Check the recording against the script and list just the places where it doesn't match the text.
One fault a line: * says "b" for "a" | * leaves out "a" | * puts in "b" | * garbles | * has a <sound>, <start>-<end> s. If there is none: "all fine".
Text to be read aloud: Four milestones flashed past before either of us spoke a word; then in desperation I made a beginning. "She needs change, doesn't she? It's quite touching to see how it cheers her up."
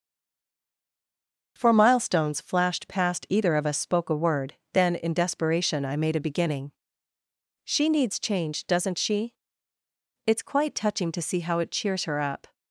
* leaves out "before"